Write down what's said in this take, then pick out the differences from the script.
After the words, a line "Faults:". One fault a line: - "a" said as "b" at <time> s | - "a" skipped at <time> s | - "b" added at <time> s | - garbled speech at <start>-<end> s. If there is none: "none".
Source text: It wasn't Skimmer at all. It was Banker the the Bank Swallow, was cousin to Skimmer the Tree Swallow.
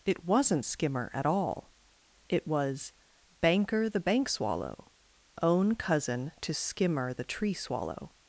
It wasn't Skimmer at all. It was Banker the Bank Swallow, own cousin to Skimmer the Tree Swallow.
Faults:
- "the" skipped at 4.0 s
- "was" said as "own" at 5.4 s